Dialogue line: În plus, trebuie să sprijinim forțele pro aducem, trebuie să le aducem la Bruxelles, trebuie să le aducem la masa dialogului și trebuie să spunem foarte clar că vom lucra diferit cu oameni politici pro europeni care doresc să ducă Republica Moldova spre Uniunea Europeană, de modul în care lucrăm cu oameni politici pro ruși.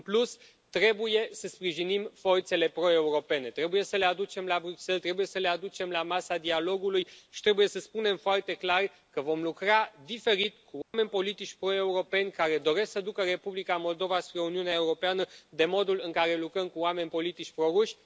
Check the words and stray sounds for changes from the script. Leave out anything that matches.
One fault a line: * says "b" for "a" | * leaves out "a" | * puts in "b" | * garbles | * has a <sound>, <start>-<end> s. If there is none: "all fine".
* says "europene" for "aducem"
* has a dropout, 10.8-10.9 s